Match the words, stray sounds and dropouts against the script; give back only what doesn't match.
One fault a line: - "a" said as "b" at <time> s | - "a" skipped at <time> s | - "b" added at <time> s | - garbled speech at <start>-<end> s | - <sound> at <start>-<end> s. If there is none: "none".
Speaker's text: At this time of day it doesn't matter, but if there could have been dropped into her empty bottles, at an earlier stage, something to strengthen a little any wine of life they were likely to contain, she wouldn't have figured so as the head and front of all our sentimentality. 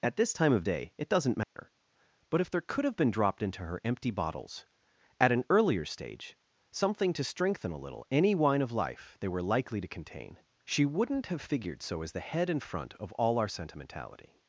- dropout at 1.4-1.6 s